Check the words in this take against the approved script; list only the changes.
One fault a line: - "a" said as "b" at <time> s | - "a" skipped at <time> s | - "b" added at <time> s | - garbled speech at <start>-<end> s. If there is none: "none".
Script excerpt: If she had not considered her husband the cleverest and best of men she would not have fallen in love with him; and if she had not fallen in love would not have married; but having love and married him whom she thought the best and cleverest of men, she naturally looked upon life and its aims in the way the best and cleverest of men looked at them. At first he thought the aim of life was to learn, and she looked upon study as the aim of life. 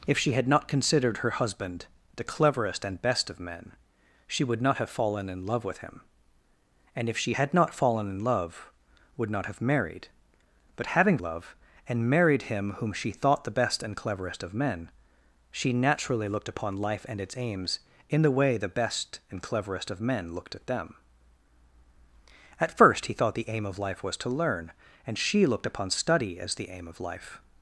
none